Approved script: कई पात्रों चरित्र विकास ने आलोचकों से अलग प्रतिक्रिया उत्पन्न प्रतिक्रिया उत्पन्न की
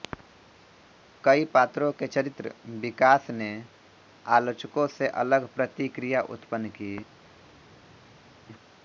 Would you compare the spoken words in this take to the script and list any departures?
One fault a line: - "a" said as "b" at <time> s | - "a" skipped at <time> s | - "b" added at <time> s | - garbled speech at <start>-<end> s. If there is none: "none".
- "के" added at 1.9 s
- "प्रतिक्रिया उत्पन्न" skipped at 6.7 s